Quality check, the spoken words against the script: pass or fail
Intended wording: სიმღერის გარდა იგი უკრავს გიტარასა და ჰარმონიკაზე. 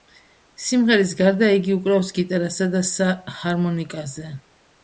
pass